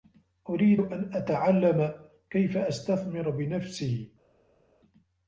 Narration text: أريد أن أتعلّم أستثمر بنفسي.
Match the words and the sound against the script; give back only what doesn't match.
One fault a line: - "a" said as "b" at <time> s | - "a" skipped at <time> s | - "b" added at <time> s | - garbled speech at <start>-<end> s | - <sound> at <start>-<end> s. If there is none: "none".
- "كيف" added at 2.3 s